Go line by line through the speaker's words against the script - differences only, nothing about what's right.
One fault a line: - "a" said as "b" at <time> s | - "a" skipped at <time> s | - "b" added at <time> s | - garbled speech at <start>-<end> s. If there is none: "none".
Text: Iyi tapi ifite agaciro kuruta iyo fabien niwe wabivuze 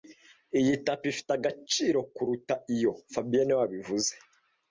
none